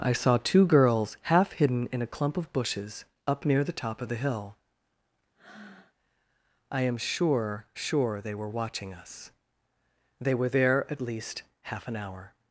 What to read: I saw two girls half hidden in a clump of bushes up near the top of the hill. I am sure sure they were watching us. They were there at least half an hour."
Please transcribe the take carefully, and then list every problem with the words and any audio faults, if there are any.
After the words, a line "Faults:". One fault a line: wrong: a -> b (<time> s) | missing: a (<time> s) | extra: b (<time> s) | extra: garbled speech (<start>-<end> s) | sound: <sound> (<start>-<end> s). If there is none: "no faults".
I saw two girls half hidden in a clump of bushes up near the top of the hill. I am sure sure they were watching us. They were there at least half an hour."
Faults:
sound: breath (5.3-5.9 s)